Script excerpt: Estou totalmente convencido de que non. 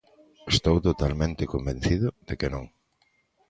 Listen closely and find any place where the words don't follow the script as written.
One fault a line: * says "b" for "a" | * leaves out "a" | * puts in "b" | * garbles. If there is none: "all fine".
all fine